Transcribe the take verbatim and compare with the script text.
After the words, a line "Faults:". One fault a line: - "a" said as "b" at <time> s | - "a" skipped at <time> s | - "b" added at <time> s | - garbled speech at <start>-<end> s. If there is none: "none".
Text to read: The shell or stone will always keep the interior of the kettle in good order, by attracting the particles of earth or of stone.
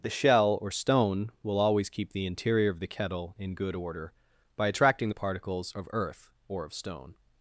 The shell or stone will always keep the interior of the kettle in good order, by attracting the particles of earth or of stone.
Faults:
none